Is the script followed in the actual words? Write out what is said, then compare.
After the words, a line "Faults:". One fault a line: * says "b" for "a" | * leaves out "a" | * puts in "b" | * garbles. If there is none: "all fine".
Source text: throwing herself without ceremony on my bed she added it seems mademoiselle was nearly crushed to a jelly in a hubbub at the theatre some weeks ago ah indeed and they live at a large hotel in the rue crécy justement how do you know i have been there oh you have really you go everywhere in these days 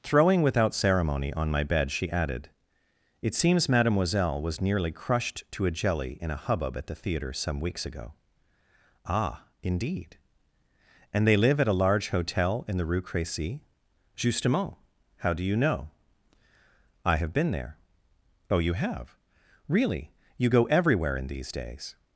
throwing without ceremony on my bed she added it seems mademoiselle was nearly crushed to a jelly in a hubbub at the theatre some weeks ago ah indeed and they live at a large hotel in the rue crécy justement how do you know i have been there oh you have really you go everywhere in these days
Faults:
* leaves out "herself"